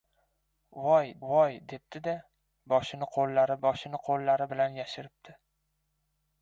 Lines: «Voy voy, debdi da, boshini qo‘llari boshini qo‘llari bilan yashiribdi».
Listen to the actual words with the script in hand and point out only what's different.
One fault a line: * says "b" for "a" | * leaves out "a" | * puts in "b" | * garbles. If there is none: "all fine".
all fine